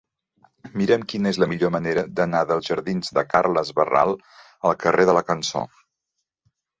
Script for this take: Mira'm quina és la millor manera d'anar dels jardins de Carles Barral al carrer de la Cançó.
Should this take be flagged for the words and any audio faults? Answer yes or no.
no